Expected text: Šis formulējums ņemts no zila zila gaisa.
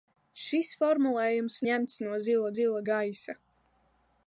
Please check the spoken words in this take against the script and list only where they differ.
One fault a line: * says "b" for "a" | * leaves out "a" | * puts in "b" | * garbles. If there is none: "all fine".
all fine